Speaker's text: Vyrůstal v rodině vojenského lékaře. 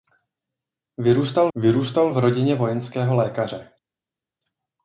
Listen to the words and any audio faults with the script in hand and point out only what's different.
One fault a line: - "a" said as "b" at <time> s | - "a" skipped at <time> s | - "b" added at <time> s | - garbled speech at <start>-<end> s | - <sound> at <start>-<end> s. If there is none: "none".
- "vyrůstal" added at 1.5 s